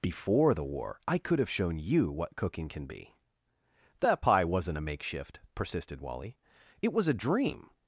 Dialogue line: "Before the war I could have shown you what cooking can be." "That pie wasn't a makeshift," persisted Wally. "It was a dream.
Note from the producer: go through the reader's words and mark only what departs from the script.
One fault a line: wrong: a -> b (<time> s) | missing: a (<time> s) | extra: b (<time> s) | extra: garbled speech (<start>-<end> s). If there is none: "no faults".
no faults